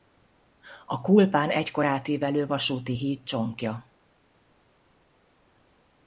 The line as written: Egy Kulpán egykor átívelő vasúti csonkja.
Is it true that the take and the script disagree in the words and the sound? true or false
true